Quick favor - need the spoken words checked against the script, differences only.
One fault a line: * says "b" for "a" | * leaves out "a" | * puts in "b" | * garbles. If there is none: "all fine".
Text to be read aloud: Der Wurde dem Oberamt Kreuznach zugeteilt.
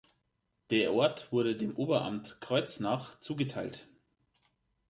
* puts in "Ort"